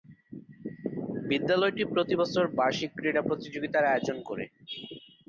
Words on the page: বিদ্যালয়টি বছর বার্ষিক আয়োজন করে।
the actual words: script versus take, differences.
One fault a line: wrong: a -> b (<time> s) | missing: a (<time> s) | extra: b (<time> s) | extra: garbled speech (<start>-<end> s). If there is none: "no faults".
extra: প্রতি (1.9 s)
extra: ক্রীড়া প্রতিযোগিতার (3.0 s)